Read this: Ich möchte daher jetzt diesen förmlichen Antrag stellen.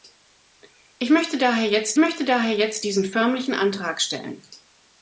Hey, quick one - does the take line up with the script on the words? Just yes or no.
no